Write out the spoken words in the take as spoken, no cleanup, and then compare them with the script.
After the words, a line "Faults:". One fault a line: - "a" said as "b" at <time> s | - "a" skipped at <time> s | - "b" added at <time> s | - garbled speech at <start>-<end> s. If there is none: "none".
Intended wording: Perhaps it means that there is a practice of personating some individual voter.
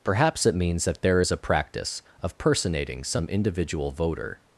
Perhaps it means that there is a practice of personating some individual voter.
Faults:
none